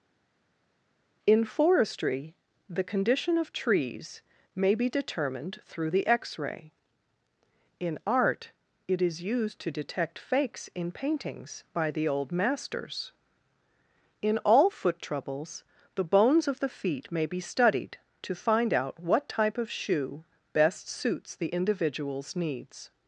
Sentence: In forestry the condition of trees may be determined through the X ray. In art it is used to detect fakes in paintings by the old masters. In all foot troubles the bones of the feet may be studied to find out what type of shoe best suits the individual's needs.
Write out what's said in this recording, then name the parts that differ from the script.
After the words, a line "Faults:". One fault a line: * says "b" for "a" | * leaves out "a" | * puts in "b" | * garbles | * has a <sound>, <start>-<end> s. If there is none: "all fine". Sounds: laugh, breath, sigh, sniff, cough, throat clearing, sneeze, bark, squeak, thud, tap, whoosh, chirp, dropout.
In forestry the condition of trees may be determined through the X ray. In art it is used to detect fakes in paintings by the old masters. In all foot troubles the bones of the feet may be studied to find out what type of shoe best suits the individual's needs.
Faults:
all fine